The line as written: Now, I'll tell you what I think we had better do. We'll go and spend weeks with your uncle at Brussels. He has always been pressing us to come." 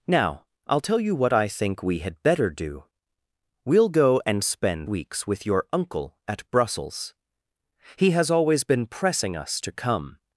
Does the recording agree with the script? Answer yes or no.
yes